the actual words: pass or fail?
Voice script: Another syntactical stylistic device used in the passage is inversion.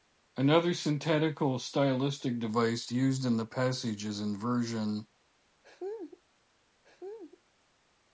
pass